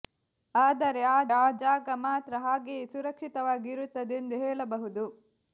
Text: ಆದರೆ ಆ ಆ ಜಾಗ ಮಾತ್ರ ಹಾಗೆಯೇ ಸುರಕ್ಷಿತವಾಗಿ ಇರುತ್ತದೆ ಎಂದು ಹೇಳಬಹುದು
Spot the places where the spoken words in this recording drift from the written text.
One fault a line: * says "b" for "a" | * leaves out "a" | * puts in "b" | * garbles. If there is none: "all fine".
all fine